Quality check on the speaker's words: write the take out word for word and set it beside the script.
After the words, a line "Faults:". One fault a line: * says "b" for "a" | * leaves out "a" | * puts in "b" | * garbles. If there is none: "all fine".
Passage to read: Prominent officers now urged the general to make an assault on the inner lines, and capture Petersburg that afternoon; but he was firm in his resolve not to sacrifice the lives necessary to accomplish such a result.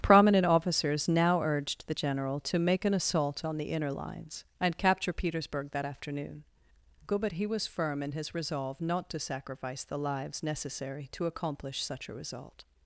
Prominent officers now urged the general to make an assault on the inner lines, and capture Petersburg that afternoon; but he was firm in his resolve not to sacrifice the lives necessary to accomplish such a result.
Faults:
all fine